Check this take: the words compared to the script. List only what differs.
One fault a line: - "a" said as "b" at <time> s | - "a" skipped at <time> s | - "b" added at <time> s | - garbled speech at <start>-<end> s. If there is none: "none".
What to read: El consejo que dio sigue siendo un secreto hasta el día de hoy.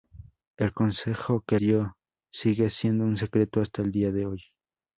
none